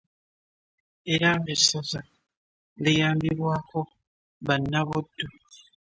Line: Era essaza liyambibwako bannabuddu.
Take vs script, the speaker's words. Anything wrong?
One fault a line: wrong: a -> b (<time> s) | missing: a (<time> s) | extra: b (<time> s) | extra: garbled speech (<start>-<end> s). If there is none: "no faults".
no faults